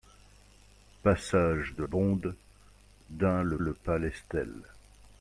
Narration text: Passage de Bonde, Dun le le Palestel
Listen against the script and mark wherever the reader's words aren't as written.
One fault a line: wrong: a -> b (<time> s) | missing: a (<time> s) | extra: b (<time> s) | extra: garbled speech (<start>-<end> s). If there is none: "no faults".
no faults